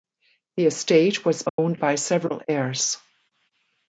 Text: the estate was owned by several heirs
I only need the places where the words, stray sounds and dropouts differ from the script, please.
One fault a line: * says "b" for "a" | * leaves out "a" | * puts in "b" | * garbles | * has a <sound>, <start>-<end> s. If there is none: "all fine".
* has a dropout, 1.5-1.6 s